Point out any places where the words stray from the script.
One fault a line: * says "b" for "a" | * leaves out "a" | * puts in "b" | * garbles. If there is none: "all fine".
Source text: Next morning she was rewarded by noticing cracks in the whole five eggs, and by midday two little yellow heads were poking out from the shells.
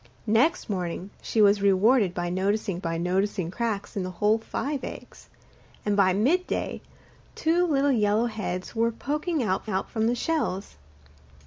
* puts in "by noticing"
* puts in "out"